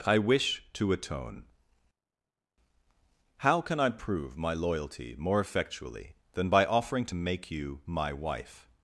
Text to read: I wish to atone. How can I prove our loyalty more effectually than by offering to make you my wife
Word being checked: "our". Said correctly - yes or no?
no